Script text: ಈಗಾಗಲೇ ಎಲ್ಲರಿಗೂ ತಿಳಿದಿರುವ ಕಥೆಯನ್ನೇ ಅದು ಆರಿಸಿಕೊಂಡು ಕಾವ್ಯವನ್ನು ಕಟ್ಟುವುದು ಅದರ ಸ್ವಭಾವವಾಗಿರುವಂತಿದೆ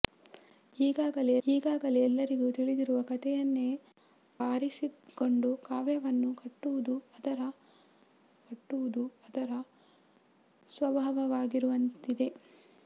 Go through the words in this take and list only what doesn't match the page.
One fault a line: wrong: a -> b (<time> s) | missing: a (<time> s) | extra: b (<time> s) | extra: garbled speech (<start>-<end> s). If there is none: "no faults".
extra: ಈಗಾಗಲೇ (1.4 s)
missing: ಅದು (3.7 s)
extra: ಕಟ್ಟುವುದು ಅದರ (8.5 s)